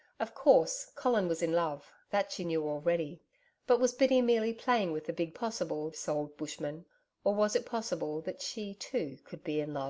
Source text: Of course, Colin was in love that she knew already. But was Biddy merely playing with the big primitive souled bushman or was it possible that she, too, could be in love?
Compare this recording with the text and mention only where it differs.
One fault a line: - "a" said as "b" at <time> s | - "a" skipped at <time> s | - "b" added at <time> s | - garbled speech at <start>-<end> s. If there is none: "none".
- "primitive" said as "possible" at 5.3 s